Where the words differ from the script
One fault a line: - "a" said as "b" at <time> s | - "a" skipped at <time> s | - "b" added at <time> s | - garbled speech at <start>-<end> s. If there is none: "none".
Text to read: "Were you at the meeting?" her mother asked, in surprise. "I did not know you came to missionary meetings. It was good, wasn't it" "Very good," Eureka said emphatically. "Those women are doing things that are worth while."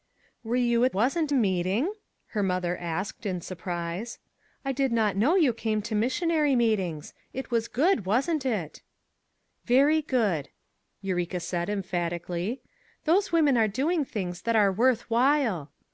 - "the" said as "wasn't" at 0.9 s